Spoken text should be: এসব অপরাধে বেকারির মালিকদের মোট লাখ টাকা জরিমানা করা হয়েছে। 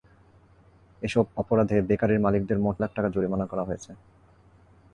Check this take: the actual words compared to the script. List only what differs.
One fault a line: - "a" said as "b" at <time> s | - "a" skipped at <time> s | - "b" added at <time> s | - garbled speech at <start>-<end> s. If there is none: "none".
none